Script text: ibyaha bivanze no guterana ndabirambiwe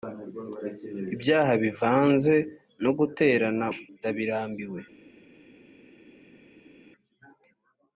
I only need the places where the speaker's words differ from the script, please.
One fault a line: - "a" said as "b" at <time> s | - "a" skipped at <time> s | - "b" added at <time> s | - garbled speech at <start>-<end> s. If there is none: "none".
none